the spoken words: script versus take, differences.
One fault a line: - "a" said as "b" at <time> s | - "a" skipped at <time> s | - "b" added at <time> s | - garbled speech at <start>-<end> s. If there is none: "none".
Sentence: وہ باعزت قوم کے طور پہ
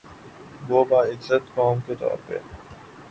none